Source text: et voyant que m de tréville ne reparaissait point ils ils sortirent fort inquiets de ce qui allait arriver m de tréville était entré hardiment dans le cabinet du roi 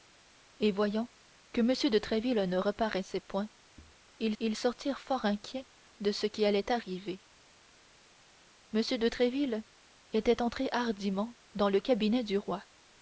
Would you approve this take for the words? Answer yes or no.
yes